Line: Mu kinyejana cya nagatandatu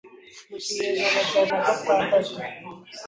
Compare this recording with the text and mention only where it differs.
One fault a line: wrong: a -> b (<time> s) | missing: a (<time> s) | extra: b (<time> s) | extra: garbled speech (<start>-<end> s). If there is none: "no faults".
no faults